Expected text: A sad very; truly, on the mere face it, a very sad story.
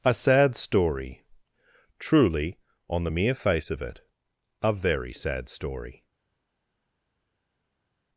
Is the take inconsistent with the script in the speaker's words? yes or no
yes